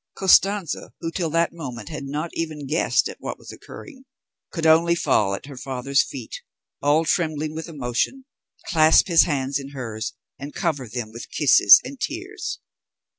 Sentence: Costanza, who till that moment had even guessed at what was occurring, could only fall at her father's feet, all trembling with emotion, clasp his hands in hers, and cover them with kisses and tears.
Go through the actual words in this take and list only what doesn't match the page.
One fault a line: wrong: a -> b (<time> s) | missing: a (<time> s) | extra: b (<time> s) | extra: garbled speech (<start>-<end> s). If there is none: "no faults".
extra: not (2.0 s)